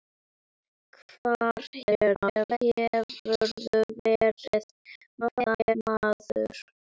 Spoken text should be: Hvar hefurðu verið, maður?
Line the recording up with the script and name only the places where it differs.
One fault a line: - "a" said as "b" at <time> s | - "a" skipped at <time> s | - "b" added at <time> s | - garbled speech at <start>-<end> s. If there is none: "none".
- garbled speech at 1.8-2.6 s
- garbled speech at 5.2-5.8 s